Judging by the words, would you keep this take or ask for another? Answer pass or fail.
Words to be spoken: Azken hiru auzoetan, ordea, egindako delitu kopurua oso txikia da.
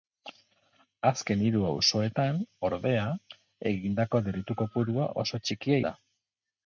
pass